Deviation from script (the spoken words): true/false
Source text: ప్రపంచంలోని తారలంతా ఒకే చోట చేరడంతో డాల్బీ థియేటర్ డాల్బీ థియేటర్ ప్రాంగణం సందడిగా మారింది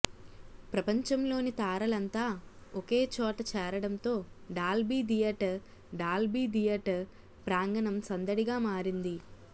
false